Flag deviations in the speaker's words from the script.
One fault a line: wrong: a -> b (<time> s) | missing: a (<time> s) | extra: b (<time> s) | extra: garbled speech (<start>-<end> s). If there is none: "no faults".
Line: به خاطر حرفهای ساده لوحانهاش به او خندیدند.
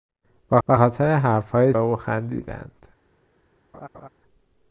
extra: به (0.7 s)
missing: ساده لوحانهاش به (1.7 s)